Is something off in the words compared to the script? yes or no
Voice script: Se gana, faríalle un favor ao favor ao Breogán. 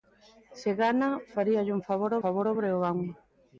no